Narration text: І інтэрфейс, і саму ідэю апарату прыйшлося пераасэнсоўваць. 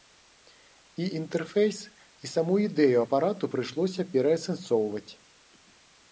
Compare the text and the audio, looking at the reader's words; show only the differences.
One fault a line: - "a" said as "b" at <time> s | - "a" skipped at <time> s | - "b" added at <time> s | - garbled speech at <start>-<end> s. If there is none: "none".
none